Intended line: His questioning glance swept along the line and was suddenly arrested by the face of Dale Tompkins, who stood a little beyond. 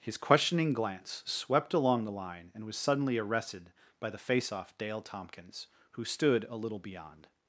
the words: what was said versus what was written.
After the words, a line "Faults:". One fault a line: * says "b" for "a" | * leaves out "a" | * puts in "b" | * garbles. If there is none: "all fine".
His questioning glance swept along the line and was suddenly arrested by the face off Dale Tompkins, who stood a little beyond.
Faults:
* says "off" for "of"